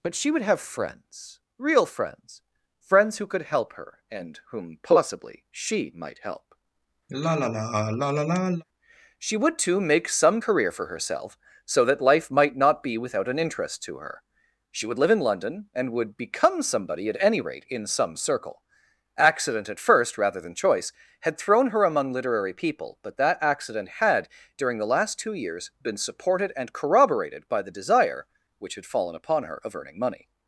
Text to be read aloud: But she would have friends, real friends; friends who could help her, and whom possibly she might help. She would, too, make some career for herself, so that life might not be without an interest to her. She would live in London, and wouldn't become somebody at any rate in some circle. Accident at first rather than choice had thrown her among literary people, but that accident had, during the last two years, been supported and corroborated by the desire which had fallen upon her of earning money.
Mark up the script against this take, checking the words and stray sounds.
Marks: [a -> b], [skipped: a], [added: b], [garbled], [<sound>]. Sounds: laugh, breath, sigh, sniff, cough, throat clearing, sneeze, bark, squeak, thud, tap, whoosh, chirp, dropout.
But she would have friends, real friends; friends who could help her, and whom possibly she might help. [sigh] She would, too, make some career for herself, so that life might not be without an interest to her. She would live in London, and [wouldn't -> would] become somebody at any rate in some circle. Accident at first rather than choice had thrown her among literary people, but that accident had, during the last two years, been supported and corroborated by the desire which had fallen upon her of earning money.